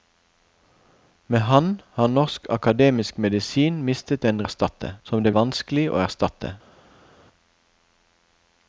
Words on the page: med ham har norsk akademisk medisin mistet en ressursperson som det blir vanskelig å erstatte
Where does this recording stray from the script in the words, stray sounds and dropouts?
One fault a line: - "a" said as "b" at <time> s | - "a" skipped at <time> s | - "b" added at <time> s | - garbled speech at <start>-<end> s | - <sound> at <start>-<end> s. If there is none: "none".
- "ressursperson" said as "erstatte" at 4.4 s
- "blir" skipped at 5.3 s